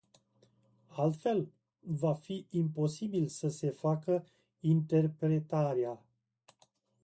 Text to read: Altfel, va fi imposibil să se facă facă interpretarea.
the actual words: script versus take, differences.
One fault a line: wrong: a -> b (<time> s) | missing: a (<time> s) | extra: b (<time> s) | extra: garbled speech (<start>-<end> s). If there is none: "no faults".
missing: facă (4.3 s)